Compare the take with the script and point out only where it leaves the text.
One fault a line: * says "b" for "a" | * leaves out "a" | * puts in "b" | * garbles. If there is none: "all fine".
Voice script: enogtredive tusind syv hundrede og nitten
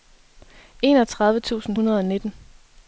* leaves out "syv"